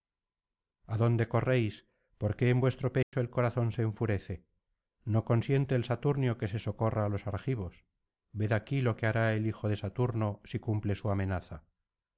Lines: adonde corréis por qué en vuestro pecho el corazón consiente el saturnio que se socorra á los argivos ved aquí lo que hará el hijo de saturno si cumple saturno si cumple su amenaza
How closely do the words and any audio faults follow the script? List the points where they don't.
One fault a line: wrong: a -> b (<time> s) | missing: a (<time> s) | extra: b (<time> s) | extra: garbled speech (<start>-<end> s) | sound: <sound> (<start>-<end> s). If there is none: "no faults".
sound: dropout (3.0-3.1 s)
extra: se enfurece no (3.7 s)
missing: saturno si cumple (10.9 s)